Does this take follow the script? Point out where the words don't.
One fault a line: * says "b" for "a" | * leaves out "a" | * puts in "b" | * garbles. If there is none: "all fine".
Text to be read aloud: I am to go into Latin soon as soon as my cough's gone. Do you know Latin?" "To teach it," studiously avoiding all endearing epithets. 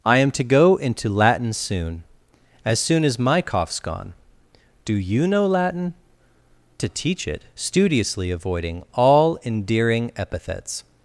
all fine